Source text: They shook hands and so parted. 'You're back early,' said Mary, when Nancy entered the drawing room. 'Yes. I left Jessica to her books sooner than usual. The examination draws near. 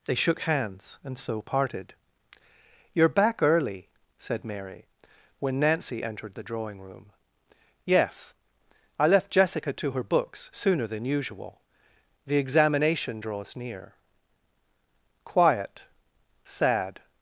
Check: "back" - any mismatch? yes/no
no